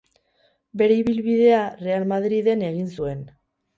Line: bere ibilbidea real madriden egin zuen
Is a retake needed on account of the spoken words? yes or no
no